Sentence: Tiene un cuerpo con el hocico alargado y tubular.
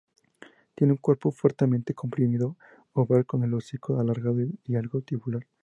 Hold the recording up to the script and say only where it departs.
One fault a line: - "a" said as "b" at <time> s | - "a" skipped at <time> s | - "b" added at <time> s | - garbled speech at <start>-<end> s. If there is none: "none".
- "fuertemente comprimido oval" added at 1.3 s
- "algo" added at 4.8 s